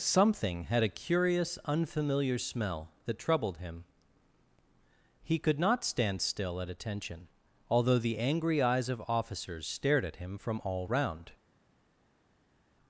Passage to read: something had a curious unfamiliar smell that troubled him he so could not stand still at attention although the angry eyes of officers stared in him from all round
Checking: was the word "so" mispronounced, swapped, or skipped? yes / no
yes